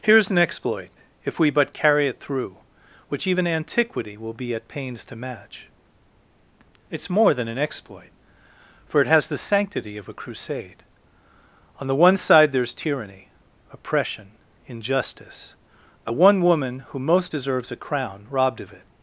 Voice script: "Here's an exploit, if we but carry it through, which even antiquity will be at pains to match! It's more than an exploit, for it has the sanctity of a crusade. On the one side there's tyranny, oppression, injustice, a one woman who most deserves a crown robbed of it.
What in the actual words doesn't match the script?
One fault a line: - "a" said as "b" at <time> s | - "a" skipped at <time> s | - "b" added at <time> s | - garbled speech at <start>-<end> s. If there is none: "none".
none